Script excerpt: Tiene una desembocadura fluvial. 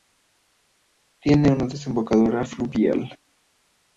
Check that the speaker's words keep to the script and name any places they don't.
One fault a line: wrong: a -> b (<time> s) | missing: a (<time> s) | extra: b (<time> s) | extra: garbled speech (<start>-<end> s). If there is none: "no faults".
no faults